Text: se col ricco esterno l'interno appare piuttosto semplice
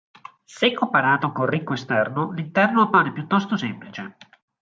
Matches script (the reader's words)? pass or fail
fail